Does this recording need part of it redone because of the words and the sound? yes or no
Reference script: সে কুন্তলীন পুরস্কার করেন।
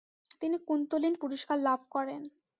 yes